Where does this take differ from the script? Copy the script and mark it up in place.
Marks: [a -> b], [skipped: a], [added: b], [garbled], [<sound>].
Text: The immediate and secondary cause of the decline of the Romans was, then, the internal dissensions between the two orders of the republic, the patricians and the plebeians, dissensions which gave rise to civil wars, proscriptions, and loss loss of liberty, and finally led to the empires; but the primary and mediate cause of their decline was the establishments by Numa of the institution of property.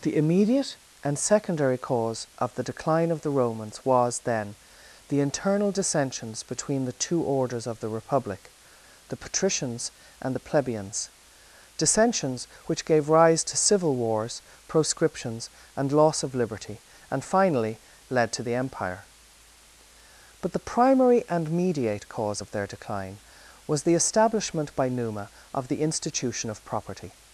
The immediate and secondary cause of the decline of the Romans was, then, the internal dissensions between the two orders of the republic, the patricians and the plebeians, dissensions which gave rise to civil wars, proscriptions, and loss [skipped: loss] of liberty, and finally led to the [empires; -> empire] but the primary and mediate cause of their decline was the [establishments -> establishment] by Numa of the institution of property.